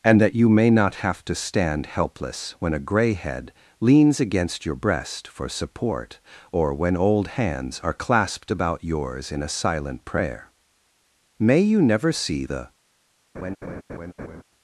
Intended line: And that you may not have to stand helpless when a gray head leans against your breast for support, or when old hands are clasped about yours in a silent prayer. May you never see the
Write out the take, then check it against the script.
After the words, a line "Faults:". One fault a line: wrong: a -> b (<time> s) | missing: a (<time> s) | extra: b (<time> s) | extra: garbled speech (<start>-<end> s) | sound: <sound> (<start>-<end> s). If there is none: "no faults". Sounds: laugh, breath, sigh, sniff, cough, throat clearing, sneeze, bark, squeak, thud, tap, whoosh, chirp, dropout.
And that you may not have to stand helpless when a gray head leans against your breast for support, or when old hands are clasped about yours in a silent prayer. May you never see the
Faults:
sound: laugh (13.3-14.4 s)